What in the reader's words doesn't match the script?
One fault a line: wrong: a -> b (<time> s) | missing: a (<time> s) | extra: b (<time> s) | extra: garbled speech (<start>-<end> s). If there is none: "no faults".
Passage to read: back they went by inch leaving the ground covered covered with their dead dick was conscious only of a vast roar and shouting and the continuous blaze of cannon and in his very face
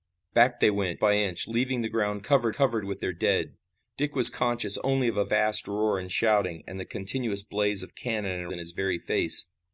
no faults